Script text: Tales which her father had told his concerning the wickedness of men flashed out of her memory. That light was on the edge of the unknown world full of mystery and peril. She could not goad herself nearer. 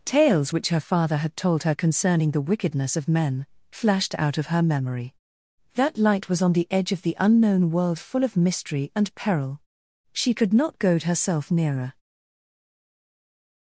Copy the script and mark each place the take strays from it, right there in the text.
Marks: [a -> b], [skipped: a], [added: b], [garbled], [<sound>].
Tales which her father had told [his -> her] concerning the wickedness of men flashed out of her memory. That light was on the edge of the unknown world full of mystery and peril. She could not goad herself nearer.